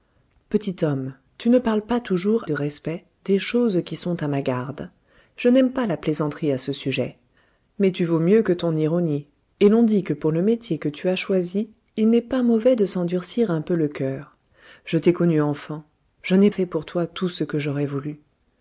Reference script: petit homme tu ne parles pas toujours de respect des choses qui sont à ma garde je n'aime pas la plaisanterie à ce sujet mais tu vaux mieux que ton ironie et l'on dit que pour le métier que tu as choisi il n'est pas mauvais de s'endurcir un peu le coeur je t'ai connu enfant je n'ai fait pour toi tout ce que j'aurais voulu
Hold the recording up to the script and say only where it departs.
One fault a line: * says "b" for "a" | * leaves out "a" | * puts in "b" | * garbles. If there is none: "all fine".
all fine